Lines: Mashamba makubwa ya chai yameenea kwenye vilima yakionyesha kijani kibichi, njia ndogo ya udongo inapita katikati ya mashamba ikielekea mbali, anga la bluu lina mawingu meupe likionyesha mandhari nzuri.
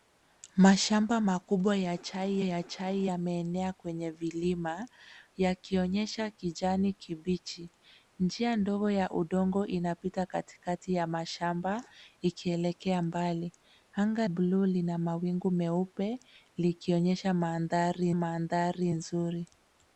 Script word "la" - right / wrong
wrong